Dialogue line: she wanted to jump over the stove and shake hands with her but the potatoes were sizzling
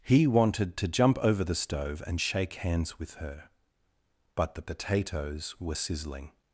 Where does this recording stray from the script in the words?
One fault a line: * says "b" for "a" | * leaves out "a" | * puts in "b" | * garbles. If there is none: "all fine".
* says "he" for "she"